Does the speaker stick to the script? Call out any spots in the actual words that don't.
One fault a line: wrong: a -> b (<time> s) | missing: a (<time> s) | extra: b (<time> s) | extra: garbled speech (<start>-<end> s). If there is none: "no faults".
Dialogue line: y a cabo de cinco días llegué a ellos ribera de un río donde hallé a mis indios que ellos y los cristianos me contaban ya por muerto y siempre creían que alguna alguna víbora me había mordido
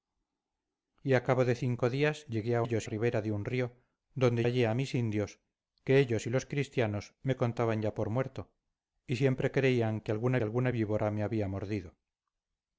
no faults